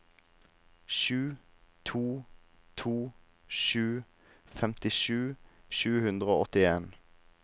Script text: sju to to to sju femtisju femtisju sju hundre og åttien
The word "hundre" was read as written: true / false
true